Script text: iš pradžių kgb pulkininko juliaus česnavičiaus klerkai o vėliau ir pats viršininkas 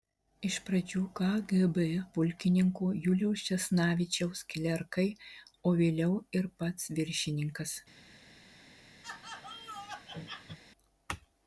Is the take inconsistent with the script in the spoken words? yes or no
no